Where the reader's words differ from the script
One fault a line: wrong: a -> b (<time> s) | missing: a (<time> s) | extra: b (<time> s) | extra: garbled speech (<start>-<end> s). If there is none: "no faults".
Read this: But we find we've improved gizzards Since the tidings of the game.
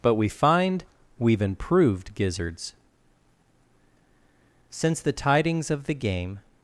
no faults